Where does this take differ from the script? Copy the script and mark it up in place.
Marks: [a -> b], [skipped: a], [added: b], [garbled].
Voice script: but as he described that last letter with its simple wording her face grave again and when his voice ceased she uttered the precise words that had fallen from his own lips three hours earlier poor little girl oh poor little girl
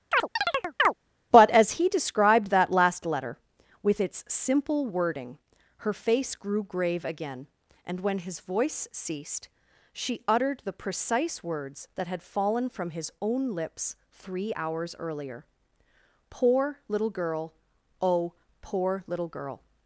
but as he described that last letter with its simple wording her face [added: grew] grave again and when his voice ceased she uttered the precise words that had fallen from his own lips three hours earlier poor little girl oh poor little girl